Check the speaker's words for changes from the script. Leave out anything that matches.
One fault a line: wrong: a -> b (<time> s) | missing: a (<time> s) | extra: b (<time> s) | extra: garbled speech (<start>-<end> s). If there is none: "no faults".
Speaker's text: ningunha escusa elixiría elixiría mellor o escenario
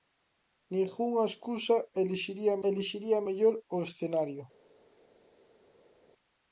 no faults